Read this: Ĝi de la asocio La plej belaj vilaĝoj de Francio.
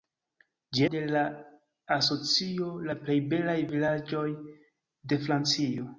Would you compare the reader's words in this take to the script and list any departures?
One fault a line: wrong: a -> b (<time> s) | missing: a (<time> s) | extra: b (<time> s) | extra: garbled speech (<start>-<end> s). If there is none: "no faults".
no faults